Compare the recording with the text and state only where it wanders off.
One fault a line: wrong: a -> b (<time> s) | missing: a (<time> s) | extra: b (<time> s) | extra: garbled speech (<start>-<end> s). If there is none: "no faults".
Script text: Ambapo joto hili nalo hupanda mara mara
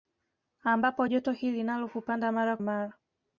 no faults